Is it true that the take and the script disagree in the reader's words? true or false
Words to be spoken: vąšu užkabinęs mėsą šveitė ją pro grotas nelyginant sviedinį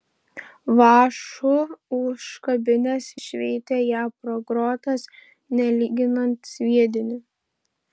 true